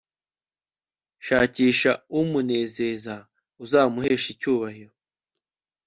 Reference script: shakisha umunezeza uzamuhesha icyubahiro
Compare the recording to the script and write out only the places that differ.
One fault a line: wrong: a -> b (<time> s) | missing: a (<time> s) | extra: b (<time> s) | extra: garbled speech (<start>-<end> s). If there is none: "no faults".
no faults